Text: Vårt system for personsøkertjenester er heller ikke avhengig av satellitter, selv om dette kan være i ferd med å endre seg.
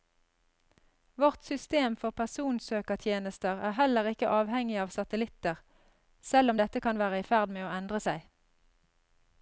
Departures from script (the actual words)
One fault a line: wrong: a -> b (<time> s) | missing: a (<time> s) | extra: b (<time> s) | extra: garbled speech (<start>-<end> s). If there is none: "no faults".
no faults